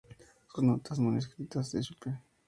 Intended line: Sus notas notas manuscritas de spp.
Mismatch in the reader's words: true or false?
true